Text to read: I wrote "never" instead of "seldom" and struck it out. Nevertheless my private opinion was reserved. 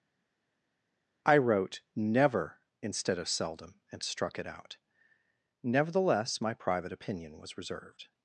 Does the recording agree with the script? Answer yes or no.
yes